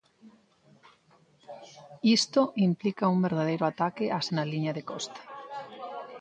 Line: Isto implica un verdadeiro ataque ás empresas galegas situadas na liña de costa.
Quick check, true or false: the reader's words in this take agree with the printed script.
false